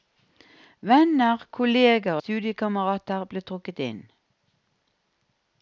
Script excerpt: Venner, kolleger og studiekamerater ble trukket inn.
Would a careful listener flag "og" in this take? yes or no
yes